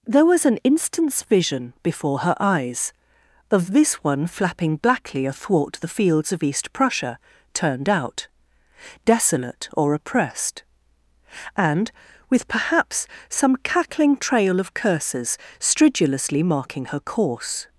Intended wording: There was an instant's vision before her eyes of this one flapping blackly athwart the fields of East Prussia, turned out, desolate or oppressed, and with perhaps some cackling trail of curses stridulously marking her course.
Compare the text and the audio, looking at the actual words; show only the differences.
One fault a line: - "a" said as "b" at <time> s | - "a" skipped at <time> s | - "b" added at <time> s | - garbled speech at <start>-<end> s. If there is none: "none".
none